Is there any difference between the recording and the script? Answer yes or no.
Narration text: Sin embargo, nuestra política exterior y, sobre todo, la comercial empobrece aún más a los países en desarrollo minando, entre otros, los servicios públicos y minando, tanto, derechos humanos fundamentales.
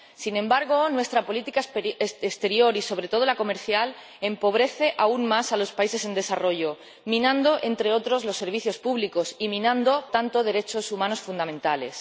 no